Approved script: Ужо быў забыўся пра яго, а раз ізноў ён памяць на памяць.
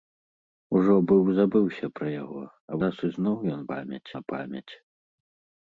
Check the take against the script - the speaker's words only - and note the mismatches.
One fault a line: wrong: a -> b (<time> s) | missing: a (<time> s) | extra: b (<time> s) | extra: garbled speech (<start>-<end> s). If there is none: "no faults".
no faults